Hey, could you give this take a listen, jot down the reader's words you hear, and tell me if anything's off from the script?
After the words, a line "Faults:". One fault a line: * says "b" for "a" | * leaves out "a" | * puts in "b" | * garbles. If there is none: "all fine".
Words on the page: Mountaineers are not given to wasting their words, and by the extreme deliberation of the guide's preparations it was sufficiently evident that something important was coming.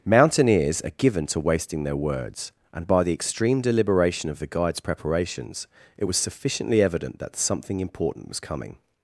Mountaineers are given to wasting their words, and by the extreme deliberation of the guide's preparations it was sufficiently evident that something important was coming.
Faults:
* leaves out "not"